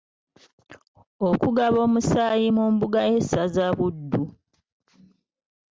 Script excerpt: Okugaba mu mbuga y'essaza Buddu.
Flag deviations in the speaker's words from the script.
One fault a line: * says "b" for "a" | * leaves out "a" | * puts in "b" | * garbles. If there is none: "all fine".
* puts in "omusaayi"